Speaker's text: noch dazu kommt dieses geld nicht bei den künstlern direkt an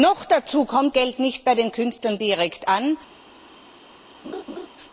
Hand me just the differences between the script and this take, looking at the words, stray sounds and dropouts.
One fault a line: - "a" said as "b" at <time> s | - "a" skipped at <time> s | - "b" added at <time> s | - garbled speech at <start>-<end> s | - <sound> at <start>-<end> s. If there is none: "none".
- "dieses" skipped at 0.9 s
- laugh at 4.2-4.7 s